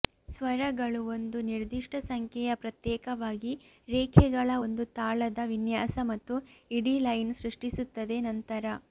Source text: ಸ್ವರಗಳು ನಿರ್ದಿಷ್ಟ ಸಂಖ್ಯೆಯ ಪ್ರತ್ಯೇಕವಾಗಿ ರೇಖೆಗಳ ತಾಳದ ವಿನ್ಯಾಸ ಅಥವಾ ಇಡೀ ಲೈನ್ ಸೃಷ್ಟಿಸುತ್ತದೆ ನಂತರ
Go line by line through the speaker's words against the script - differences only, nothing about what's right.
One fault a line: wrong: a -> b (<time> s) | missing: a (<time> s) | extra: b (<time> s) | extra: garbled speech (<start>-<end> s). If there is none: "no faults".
extra: ಒಂದು (1.1 s)
extra: ಒಂದು (4.6 s)
wrong: ಅಥವಾ -> ಮತ್ತು (6.1 s)